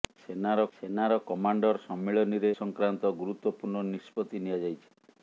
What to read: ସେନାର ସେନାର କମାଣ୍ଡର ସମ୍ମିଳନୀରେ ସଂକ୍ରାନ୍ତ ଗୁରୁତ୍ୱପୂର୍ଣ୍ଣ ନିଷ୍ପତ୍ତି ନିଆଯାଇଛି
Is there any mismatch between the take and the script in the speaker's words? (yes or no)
no